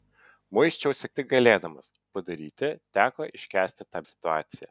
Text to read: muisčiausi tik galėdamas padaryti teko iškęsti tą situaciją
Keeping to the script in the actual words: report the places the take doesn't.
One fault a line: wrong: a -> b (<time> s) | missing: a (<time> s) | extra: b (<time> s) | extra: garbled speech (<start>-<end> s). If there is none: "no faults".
no faults